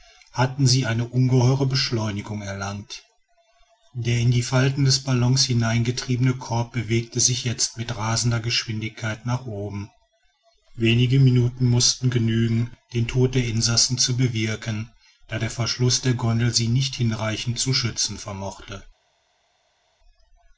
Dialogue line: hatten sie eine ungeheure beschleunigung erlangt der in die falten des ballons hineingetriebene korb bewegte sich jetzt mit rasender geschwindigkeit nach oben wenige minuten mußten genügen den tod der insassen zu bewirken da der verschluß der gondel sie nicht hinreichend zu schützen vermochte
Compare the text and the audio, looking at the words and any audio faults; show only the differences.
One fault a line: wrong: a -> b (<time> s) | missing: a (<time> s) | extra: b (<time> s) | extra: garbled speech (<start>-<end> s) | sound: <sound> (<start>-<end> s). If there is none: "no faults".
no faults